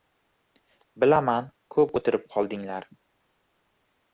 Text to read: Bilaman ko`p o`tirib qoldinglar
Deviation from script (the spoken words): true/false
false